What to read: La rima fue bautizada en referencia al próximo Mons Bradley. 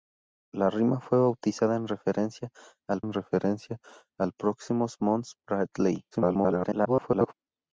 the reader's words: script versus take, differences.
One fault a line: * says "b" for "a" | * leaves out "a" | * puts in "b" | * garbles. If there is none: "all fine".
* puts in "en referencia al"
* garbles